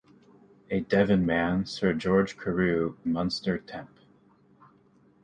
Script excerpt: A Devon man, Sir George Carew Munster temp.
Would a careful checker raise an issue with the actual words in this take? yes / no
no